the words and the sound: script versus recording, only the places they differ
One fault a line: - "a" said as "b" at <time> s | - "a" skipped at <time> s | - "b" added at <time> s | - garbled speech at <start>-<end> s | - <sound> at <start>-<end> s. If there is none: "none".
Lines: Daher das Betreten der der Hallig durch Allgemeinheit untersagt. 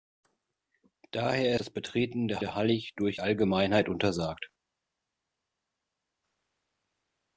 none